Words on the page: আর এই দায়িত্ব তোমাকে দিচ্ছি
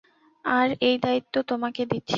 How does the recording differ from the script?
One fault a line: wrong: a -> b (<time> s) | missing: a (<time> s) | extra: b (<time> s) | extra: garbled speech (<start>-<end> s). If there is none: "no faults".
no faults